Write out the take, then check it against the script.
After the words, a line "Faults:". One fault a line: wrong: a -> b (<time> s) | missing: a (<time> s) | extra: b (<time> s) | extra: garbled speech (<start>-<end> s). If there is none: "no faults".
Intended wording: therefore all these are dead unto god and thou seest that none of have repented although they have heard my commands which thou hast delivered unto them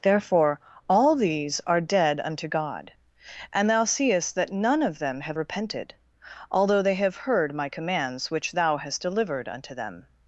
therefore all these are dead unto god and thou seest that none of them have repented although they have heard my commands which thou hast delivered unto them
Faults:
extra: them (5.0 s)